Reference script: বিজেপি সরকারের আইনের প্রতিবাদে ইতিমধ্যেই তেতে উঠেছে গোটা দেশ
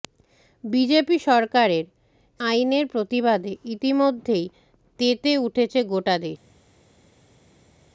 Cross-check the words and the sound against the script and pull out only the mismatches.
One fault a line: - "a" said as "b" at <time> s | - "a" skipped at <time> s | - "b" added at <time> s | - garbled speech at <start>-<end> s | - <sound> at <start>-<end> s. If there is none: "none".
none